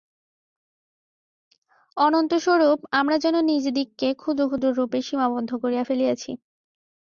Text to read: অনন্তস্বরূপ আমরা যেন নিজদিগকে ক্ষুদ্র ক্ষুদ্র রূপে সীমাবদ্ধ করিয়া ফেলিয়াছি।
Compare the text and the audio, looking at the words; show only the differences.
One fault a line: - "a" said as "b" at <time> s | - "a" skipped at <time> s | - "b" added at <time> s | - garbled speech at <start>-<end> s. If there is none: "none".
none